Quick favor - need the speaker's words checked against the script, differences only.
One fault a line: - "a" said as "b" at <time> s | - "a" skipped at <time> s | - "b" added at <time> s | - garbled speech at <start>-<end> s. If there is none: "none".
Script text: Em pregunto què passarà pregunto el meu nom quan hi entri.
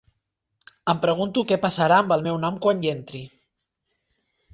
- "pregunto" said as "amb" at 2.0 s